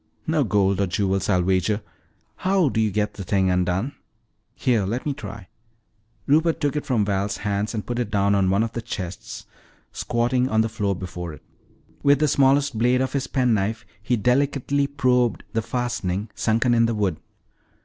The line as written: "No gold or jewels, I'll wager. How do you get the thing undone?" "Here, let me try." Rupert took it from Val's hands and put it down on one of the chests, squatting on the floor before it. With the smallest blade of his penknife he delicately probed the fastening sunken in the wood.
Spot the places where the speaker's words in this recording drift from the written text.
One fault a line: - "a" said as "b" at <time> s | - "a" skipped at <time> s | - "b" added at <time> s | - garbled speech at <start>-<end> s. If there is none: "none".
none